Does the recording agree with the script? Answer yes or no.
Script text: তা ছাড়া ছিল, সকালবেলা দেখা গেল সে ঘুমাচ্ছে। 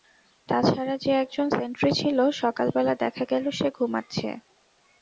no